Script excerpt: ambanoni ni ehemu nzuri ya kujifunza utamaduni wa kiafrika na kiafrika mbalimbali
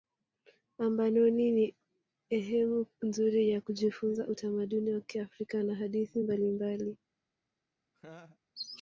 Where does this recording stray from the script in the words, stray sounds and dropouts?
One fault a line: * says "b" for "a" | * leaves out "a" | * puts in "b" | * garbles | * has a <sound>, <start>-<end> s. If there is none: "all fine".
* says "hadithi" for "kiafrika"
* has a laugh, 7.9-8.4 s